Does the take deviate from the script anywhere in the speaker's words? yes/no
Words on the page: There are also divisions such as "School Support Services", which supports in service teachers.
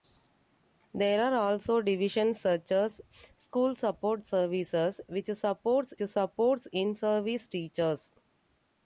yes